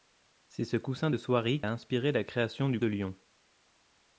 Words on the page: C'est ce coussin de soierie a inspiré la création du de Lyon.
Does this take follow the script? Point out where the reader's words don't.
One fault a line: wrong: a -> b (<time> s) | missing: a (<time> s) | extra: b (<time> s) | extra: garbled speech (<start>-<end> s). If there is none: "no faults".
no faults